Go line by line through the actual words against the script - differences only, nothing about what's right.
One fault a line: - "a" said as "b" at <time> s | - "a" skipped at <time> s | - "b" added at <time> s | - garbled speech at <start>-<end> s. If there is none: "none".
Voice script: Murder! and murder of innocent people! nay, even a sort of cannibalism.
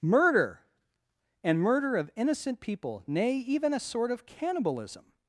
none